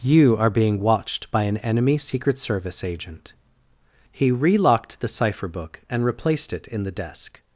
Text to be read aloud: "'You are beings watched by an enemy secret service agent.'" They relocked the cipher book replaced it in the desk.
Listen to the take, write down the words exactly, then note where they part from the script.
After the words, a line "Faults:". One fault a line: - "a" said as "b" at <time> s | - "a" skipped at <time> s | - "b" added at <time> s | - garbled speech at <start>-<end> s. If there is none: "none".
"'You are being watched by an enemy secret service agent.'" He relocked the cipher book and replaced it in the desk.
Faults:
- "beings" said as "being" at 0.5 s
- "They" said as "He" at 4.1 s
- "and" added at 5.9 s